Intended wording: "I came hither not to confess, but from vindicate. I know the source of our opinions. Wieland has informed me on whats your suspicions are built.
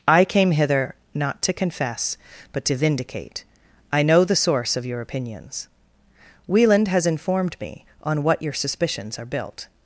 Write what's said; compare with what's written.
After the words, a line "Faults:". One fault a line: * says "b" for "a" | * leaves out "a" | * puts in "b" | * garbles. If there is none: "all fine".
"I came hither not to confess, but to vindicate. I know the source of your opinions. Wieland has informed me on what your suspicions are built.
Faults:
* says "to" for "from"
* says "your" for "our"
* says "what" for "whats"